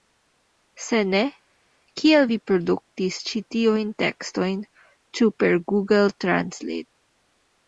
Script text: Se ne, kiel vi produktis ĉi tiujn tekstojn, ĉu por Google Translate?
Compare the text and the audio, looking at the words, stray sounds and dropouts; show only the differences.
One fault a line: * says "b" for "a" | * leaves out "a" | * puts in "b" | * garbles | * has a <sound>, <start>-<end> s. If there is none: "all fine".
* says "per" for "por"